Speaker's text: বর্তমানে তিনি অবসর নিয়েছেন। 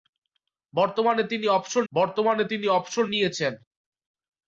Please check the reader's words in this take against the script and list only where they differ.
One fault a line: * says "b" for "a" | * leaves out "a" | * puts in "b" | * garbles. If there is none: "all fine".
* puts in "বর্তমানে তিনি অবসর"